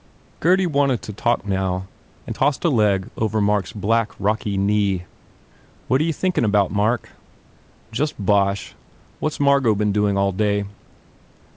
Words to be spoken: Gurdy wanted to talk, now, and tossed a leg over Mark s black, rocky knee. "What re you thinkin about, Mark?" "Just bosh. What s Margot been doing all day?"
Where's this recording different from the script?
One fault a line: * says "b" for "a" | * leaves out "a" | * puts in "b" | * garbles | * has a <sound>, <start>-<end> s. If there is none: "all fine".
all fine